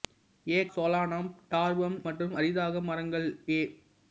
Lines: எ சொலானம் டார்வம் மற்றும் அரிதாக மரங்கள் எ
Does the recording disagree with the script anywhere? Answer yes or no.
no